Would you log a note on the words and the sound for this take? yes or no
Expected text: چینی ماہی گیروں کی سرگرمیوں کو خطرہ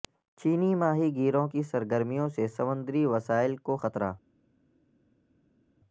yes